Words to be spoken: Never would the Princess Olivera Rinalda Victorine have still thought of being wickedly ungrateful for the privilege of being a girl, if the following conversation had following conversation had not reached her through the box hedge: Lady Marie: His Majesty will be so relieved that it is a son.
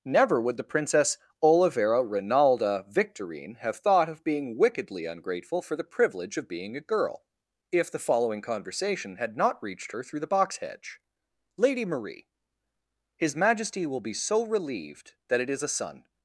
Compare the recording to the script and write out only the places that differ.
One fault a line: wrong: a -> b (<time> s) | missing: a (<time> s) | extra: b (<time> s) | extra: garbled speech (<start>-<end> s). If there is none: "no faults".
missing: still (3.8 s)
missing: following conversation had (9.4 s)